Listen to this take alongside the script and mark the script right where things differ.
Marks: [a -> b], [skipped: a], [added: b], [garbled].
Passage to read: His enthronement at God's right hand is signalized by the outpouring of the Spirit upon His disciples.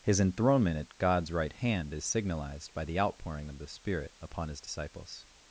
His enthronement at God's right hand is signalized by the outpouring of the Spirit upon His disciples.